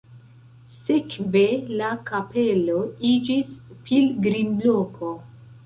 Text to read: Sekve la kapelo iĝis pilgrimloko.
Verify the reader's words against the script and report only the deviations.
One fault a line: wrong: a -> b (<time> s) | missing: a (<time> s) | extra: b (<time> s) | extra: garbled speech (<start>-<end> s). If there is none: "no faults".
no faults